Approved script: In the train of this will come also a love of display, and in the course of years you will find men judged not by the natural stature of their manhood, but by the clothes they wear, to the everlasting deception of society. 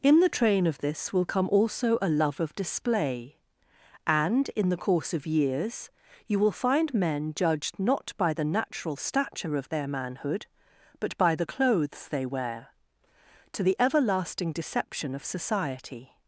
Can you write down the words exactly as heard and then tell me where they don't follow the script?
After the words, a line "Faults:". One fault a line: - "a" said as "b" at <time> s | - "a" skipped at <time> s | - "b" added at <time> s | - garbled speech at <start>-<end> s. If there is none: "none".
In the train of this will come also a love of display, and in the course of years you will find men judged not by the natural stature of their manhood, but by the clothes they wear, to the everlasting deception of society.
Faults:
none